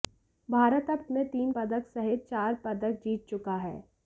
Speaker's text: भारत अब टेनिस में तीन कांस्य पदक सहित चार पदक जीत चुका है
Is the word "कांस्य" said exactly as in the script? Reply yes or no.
no